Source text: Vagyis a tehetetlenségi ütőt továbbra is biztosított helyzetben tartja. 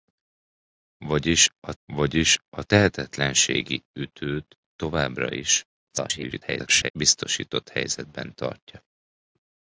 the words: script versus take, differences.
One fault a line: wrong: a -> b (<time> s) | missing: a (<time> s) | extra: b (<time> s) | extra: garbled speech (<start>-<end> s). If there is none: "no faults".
extra: vagyis a (1.8 s)
extra: garbled speech (5.9-6.9 s)